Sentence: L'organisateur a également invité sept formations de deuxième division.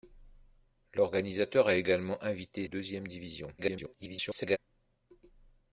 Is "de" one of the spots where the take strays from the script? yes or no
yes